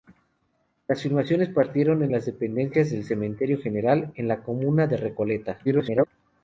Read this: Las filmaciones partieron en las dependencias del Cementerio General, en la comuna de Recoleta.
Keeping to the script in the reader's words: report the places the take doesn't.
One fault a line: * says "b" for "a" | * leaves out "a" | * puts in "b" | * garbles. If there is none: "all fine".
* garbles